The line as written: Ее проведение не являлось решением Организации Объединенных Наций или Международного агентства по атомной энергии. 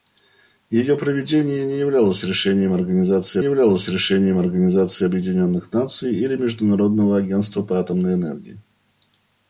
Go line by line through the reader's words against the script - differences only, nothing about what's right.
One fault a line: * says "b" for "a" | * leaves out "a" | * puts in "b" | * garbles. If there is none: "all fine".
* puts in "являлось решением Организации"